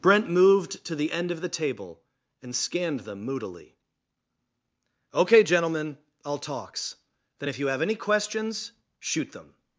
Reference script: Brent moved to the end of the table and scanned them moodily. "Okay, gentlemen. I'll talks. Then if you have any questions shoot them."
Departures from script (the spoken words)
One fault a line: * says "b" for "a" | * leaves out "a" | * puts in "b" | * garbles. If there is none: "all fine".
all fine